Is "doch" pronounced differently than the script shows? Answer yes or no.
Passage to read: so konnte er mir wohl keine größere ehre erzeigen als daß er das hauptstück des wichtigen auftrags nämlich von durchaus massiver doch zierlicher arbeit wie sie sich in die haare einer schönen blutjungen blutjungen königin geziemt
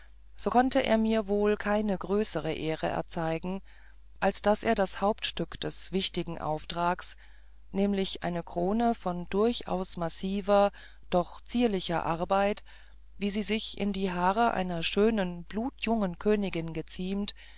no